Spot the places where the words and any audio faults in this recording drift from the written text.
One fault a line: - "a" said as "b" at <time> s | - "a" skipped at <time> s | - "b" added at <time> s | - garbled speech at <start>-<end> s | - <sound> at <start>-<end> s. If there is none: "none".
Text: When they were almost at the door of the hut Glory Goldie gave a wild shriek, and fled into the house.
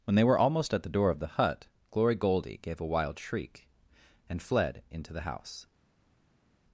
none